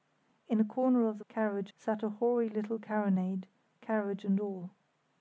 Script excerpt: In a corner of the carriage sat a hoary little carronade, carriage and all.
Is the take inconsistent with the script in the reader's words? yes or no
no